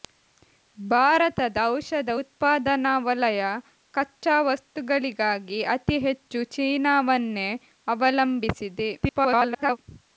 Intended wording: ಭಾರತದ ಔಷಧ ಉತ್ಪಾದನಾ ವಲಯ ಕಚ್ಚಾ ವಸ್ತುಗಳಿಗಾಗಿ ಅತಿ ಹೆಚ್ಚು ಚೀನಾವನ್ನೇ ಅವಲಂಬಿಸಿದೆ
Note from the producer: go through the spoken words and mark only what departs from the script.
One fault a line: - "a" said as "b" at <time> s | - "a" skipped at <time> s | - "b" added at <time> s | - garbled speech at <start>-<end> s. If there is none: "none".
- garbled speech at 9.0-9.8 s